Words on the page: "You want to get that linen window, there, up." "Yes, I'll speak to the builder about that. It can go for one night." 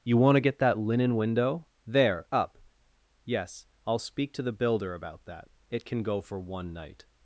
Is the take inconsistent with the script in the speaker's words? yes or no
no